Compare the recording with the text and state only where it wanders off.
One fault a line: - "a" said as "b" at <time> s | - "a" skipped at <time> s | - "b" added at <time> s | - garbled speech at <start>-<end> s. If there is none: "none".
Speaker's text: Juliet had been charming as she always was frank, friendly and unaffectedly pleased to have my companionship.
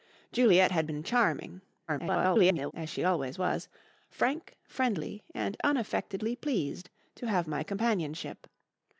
- garbled speech at 1.9-2.7 s